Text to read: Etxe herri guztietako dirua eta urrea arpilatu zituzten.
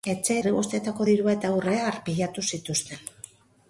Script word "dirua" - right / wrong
right